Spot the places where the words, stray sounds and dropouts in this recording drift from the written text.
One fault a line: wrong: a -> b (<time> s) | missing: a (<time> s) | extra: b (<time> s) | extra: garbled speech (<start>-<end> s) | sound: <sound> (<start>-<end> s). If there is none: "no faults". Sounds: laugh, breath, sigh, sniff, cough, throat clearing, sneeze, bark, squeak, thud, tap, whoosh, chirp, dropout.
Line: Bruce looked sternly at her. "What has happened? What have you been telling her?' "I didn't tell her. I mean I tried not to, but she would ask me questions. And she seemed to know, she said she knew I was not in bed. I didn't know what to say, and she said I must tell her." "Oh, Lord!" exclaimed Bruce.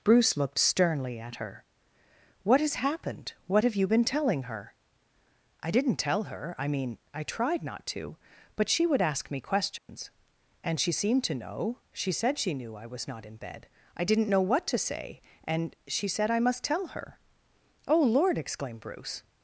sound: dropout (9.8-9.9 s)